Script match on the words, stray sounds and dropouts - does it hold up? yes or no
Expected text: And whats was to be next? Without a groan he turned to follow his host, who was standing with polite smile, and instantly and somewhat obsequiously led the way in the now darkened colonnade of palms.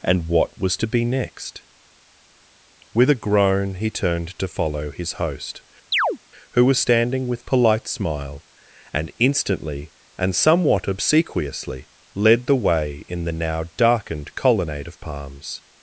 no